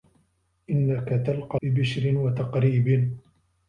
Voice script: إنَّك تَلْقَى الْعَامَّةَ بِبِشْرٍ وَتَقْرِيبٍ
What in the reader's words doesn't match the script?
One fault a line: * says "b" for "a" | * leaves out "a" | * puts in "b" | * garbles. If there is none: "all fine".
* leaves out "الْعَامَّةَ"